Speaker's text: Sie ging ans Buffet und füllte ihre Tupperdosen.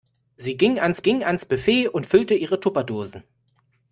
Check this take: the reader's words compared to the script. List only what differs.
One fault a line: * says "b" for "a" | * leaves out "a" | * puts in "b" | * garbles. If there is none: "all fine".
* puts in "ging ans"